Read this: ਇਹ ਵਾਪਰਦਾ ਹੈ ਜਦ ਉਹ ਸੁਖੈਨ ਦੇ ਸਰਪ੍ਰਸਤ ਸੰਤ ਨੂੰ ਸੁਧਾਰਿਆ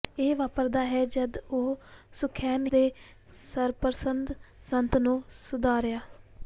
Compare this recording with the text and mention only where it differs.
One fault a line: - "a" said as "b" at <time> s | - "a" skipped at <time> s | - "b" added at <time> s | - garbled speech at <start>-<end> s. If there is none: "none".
none